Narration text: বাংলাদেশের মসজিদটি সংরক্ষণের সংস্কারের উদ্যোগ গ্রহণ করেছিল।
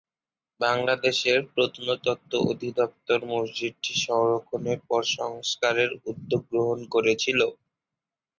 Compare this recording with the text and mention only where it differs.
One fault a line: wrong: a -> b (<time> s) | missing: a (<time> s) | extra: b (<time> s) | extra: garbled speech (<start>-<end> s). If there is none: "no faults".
extra: প্রত্নতত্ত্ব অধিদপ্তর (1.5 s)
extra: পর (4.9 s)